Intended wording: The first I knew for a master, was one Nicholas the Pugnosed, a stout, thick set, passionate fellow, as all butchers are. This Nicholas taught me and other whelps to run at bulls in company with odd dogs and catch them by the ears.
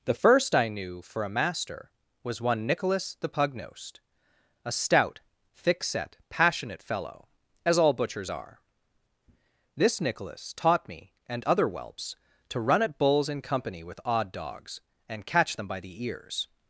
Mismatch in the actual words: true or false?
false